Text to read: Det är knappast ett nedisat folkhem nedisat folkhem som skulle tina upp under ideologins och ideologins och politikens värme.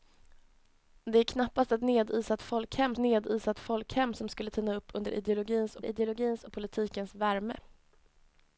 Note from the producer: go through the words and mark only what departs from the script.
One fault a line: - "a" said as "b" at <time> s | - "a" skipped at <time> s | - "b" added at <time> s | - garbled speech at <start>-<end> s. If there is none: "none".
none